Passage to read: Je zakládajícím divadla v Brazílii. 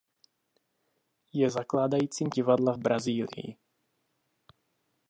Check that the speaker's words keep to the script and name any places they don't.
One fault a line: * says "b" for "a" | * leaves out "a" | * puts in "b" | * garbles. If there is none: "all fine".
all fine